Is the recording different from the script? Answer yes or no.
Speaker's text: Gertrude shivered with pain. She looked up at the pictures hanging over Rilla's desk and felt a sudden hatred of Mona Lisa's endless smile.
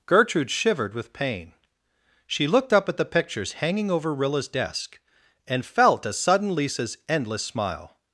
yes